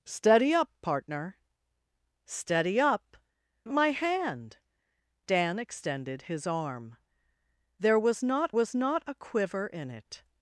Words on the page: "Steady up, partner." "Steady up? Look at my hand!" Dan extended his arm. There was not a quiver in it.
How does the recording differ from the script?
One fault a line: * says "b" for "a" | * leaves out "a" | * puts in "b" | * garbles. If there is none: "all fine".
* leaves out "Look at"
* puts in "was not"